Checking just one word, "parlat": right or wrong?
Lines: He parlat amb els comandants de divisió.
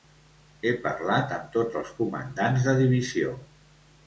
right